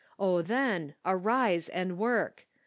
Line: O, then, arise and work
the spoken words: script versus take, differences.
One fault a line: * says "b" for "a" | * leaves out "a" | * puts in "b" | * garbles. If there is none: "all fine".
all fine